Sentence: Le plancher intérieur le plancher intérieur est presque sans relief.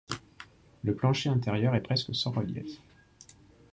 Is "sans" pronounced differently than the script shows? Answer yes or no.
no